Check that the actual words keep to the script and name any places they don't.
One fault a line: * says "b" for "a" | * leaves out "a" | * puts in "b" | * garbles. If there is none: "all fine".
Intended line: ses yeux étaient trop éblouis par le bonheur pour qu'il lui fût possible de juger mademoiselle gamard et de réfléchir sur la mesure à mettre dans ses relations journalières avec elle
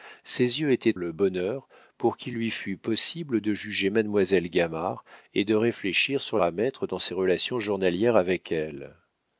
* leaves out "trop éblouis par"
* leaves out "la mesure"